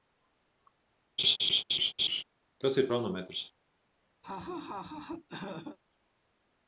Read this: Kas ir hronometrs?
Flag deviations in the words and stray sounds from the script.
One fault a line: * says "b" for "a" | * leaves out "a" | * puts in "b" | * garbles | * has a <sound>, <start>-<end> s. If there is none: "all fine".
* has a laugh, 1.2-2.2 s
* has a laugh, 4.2-5.8 s